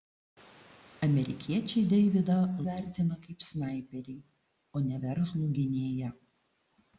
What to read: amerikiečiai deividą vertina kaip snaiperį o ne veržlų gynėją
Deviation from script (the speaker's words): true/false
false